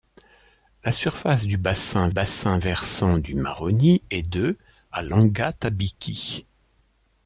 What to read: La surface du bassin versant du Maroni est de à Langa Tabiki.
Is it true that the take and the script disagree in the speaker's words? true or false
true